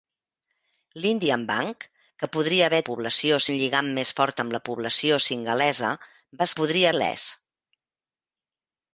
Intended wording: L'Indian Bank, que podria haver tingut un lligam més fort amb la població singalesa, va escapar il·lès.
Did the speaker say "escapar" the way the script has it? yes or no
no